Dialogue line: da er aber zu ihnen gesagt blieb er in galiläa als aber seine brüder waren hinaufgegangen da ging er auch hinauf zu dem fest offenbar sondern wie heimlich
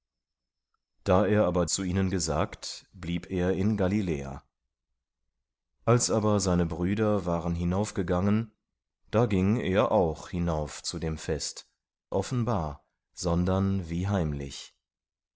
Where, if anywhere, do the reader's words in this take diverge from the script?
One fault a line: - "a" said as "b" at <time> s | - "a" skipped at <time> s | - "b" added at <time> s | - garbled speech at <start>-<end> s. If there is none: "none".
none